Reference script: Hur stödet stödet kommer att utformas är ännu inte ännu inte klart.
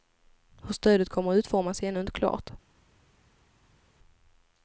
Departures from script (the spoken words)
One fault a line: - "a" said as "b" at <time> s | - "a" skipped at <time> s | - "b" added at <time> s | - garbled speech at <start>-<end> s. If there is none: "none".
- "stödet" skipped at 1.1 s
- "ännu inte" skipped at 2.1 s